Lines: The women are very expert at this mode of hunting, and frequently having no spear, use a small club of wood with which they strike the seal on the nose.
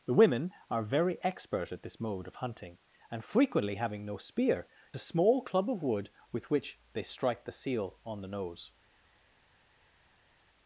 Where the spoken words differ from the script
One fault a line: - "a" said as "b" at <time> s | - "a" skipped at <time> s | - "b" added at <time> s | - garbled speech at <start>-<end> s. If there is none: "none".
- "use" skipped at 4.7 s